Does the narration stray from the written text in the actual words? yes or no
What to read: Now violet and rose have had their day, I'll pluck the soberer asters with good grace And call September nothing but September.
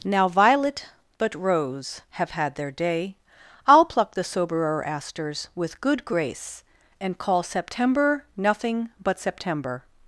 yes